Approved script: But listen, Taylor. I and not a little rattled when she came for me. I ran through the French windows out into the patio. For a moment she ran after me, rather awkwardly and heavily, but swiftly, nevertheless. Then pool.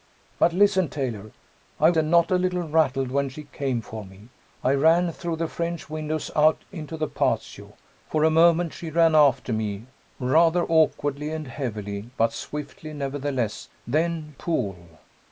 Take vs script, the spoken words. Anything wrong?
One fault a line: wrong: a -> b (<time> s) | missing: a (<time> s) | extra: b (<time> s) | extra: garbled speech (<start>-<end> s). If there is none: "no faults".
no faults